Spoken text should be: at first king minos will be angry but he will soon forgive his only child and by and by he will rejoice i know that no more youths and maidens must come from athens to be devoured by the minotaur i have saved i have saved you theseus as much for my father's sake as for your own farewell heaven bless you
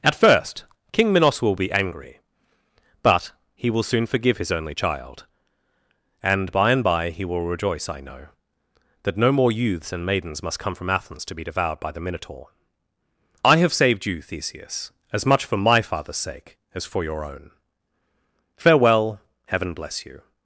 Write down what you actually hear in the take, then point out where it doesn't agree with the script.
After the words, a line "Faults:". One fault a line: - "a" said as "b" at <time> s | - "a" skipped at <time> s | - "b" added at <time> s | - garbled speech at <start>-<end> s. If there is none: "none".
at first king minos will be angry but he will soon forgive his only child and by and by he will rejoice i know that no more youths and maidens must come from athens to be devoured by the minotaur i have saved you theseus as much for my father's sake as for your own farewell heaven bless you
Faults:
- "i have saved" skipped at 14.1 s